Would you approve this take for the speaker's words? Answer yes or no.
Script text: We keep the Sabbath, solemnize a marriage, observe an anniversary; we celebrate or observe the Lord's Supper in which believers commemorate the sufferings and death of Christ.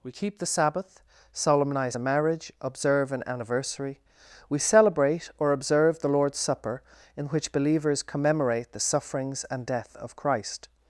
yes